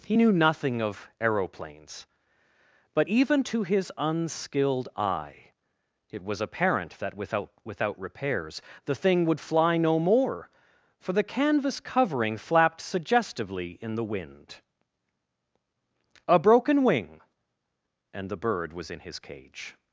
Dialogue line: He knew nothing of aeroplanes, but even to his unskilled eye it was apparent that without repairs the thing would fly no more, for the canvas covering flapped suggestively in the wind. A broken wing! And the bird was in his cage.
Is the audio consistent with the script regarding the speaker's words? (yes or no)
no